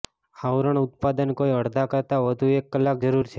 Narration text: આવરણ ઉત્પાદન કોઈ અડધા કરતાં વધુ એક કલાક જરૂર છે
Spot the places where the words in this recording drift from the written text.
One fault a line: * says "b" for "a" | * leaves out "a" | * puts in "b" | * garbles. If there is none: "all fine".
all fine